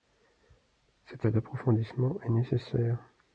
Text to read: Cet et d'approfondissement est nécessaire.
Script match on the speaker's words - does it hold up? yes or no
yes